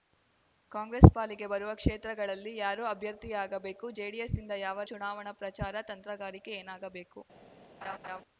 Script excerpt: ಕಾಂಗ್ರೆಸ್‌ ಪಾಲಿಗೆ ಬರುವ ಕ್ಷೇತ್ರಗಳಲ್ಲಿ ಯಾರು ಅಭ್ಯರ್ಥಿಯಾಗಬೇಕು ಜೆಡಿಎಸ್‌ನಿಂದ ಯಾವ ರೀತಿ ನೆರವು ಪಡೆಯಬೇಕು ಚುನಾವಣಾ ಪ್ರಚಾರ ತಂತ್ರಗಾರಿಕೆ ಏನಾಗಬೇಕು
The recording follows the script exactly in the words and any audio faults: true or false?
false